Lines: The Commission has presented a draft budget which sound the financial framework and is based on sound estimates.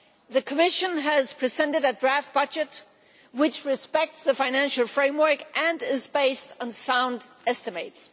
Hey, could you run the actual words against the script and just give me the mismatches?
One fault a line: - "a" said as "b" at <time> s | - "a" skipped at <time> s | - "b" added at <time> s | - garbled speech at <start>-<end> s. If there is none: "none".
- "sound" said as "respects" at 3.6 s